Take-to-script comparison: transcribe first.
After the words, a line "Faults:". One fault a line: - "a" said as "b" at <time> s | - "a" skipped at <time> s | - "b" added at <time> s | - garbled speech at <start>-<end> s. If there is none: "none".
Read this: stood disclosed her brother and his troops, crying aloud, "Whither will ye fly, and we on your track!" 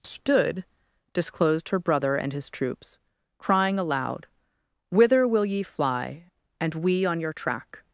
stood disclosed her brother and his troops, crying aloud, "Whither will ye fly, and we on your track!"
Faults:
none